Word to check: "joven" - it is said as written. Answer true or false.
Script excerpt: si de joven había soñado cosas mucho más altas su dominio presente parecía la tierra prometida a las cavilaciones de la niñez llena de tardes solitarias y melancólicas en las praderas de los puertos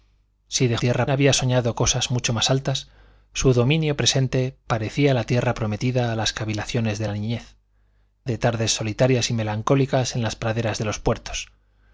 false